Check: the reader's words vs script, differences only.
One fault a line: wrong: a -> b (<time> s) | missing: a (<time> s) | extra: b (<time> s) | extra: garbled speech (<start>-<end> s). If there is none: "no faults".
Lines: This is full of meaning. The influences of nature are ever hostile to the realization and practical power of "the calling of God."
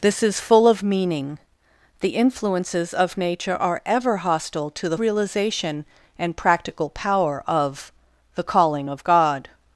no faults